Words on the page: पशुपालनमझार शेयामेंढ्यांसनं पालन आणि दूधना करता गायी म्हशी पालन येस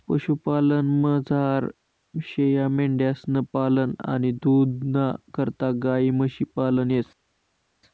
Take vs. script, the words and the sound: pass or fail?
pass